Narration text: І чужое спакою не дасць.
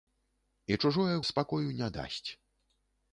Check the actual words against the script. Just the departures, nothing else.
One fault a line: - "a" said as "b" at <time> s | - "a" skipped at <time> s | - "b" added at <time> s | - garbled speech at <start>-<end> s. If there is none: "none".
none